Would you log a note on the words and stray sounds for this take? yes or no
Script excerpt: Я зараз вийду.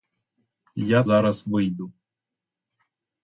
no